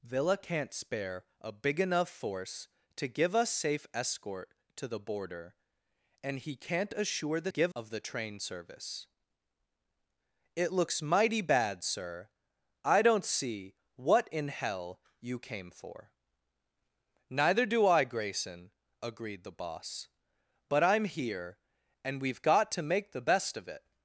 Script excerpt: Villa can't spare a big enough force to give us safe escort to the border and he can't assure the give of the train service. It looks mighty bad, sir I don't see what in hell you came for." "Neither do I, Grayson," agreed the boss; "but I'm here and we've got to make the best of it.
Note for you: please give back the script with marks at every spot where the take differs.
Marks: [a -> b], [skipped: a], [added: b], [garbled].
Villa can't spare a big enough force to give us safe escort to the border and he can't assure the give of the train service. It looks mighty bad, sir I don't see what in hell you came for." "Neither do I, Grayson," agreed the boss; "but I'm here and we've got to make the best of it.